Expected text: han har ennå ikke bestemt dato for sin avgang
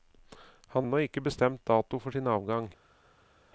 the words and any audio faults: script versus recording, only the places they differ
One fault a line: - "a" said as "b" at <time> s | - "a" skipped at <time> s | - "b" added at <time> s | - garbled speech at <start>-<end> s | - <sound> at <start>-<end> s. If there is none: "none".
- "har" skipped at 0.9 s